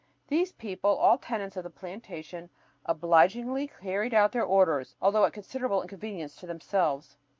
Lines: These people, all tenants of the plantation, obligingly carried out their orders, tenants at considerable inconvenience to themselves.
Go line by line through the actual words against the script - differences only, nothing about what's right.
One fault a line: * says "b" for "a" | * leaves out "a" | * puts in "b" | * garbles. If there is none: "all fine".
* says "although" for "tenants"